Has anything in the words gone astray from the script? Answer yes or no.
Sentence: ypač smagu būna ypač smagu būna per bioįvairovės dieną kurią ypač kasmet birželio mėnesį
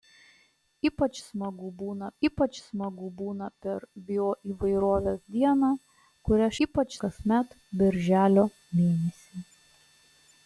no